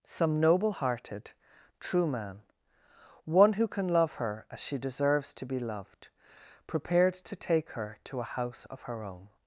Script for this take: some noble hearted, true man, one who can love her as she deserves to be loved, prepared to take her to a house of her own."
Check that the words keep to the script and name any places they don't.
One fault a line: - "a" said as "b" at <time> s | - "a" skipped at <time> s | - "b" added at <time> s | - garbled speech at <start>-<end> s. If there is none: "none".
none